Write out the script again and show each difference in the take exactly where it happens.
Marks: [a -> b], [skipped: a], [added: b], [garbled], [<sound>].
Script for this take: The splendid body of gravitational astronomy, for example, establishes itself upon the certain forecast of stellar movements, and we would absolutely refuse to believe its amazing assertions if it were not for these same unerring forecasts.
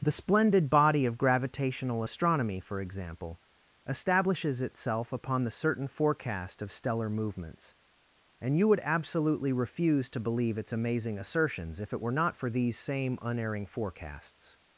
The splendid body of gravitational astronomy, for example, establishes itself upon the certain forecast of stellar movements, and [we -> you] would absolutely refuse to believe its amazing assertions if it were not for these same unerring forecasts.